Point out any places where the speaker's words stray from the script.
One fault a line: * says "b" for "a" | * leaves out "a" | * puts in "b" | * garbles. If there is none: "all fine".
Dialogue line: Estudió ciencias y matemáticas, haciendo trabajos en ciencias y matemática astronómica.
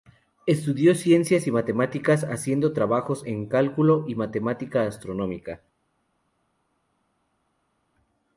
* says "cálculo" for "ciencias"